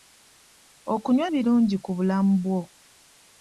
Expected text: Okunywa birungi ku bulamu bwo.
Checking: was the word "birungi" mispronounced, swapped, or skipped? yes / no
no